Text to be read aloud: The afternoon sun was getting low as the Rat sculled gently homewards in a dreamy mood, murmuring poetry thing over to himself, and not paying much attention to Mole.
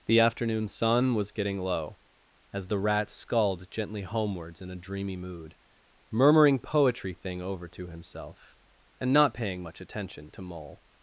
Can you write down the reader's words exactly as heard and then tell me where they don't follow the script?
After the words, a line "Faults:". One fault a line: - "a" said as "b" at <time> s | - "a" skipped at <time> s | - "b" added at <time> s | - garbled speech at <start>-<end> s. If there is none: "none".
The afternoon sun was getting low as the Rat sculled gently homewards in a dreamy mood, murmuring poetry thing over to himself, and not paying much attention to Mole.
Faults:
none